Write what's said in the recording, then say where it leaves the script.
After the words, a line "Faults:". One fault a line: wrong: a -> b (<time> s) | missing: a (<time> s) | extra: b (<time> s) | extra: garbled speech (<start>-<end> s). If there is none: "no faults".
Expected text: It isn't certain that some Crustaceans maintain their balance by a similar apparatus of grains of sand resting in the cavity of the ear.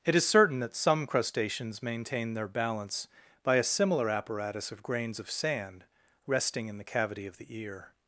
It is certain that some Crustaceans maintain their balance by a similar apparatus of grains of sand resting in the cavity of the ear.
Faults:
wrong: isn't -> is (0.1 s)